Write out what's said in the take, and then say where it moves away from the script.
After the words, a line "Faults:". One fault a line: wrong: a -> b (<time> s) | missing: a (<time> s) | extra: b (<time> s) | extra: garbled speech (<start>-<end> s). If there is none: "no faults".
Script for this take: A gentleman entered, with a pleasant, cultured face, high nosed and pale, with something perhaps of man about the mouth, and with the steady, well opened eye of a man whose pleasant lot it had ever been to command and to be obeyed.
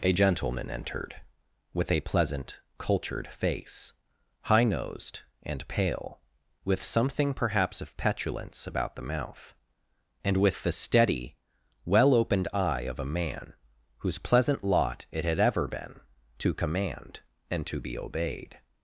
A gentleman entered, with a pleasant, cultured face, high nosed and pale, with something perhaps of petulance about the mouth, and with the steady, well opened eye of a man whose pleasant lot it had ever been to command and to be obeyed.
Faults:
wrong: man -> petulance (8.0 s)